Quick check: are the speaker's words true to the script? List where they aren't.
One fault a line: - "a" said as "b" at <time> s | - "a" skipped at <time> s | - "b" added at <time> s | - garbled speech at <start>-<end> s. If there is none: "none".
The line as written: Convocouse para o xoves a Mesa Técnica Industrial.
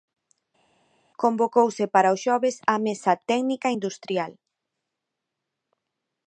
none